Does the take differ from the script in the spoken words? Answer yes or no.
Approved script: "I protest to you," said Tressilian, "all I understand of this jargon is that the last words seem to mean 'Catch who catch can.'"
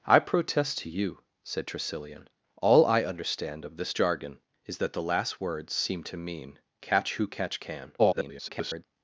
yes